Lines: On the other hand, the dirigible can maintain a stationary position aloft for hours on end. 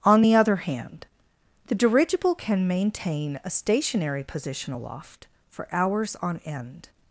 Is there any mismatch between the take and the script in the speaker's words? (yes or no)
no